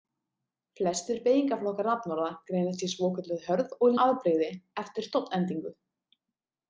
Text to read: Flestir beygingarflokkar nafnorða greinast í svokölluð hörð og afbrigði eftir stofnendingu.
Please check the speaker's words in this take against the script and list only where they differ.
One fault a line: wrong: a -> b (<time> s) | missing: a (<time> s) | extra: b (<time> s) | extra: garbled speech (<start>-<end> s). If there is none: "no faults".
no faults